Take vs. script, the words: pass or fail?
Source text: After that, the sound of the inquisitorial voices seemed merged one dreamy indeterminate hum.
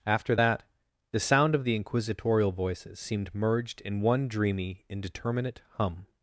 fail